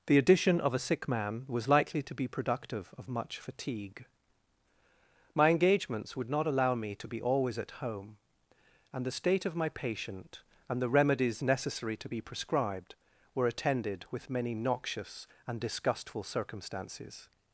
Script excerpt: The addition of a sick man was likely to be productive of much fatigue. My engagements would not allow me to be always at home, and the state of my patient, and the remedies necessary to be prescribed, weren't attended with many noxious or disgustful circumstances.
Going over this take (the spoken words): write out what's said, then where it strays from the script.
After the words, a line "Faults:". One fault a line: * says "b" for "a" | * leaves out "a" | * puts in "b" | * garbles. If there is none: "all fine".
The addition of a sick man was likely to be productive of much fatigue. My engagements would not allow me to be always at home, and the state of my patient, and the remedies necessary to be prescribed, were attended with many noxious and disgustful circumstances.
Faults:
* says "were" for "weren't"
* says "and" for "or"